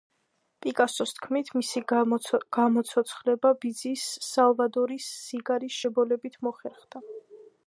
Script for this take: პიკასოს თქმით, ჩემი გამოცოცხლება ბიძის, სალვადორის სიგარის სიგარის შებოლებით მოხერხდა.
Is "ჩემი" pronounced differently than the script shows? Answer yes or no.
yes